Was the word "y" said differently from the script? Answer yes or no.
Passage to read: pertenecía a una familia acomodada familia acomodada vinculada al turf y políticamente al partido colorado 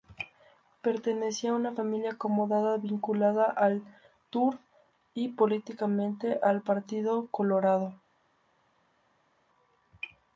no